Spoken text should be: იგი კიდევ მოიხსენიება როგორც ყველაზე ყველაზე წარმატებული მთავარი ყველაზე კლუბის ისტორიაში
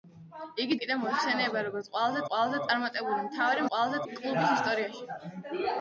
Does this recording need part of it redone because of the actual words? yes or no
no